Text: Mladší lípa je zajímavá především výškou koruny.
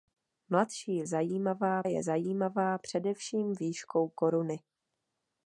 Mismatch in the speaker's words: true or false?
true